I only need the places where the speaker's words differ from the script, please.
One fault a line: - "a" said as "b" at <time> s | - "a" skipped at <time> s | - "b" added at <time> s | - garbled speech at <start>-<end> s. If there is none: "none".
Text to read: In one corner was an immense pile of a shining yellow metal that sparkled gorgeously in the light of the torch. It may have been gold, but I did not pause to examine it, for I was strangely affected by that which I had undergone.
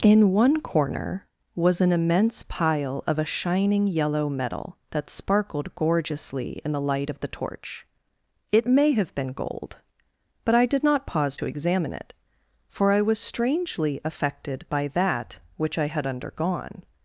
none